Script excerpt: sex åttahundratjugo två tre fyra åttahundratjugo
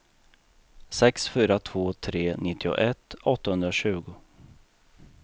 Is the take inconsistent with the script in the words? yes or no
yes